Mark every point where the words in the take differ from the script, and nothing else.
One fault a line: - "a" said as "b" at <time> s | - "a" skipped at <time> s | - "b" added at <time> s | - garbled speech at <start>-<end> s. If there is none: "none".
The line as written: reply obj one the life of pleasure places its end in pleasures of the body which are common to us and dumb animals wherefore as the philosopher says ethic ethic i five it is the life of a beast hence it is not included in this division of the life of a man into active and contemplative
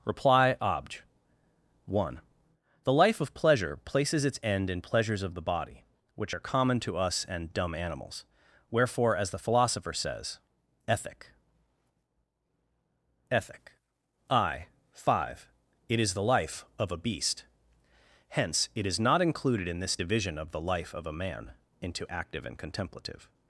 none